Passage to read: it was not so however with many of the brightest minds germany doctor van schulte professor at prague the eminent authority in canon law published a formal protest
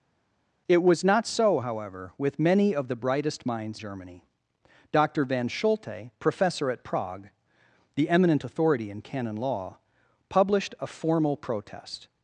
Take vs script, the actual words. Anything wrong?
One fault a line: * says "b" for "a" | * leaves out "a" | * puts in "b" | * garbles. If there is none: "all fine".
all fine